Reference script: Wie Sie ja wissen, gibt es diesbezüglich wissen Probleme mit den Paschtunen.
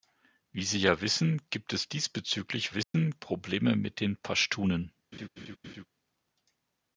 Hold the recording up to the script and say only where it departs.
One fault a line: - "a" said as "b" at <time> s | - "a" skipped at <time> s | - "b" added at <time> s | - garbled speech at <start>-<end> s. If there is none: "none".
none